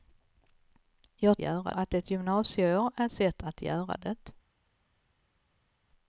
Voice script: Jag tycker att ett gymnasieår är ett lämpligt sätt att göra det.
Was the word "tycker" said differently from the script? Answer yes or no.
yes